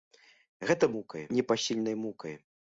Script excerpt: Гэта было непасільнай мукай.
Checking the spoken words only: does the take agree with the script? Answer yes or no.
no